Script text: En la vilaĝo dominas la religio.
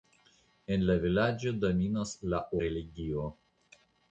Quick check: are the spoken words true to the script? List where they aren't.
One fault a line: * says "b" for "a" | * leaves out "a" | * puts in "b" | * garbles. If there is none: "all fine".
all fine